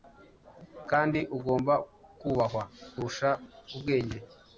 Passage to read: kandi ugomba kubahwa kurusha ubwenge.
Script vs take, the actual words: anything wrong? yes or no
no